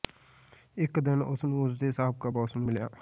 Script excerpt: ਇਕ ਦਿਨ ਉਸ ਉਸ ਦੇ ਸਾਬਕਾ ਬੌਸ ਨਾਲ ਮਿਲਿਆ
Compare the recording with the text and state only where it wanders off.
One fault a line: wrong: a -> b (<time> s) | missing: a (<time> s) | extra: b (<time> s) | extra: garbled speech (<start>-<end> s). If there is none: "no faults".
extra: ਨੂੰ (1.4 s)
wrong: ਨਾਲ -> ਨੂੰ (2.6 s)